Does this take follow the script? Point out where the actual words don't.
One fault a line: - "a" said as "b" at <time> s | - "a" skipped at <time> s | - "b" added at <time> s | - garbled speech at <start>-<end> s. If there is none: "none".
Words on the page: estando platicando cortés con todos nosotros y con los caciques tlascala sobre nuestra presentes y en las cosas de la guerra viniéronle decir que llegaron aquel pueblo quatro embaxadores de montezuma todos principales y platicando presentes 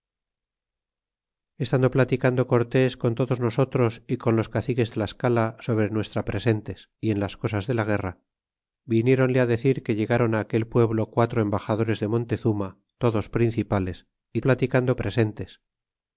none